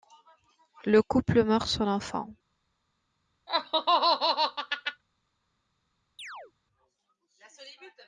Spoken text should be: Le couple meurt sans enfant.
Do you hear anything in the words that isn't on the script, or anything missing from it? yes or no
no